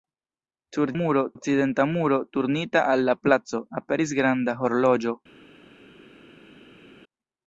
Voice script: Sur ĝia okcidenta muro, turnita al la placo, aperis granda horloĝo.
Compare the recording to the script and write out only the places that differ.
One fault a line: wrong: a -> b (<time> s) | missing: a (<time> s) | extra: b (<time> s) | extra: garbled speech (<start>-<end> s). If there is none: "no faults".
wrong: ĝia -> muro (1.0 s)